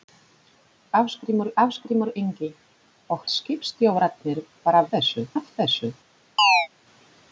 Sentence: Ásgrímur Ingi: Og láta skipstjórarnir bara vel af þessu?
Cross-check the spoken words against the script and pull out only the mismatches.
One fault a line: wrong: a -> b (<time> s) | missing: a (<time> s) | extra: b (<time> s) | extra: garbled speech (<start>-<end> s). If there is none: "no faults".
extra: ásgrímur (1.6 s)
missing: láta (3.2 s)
wrong: vel -> þessu (4.9 s)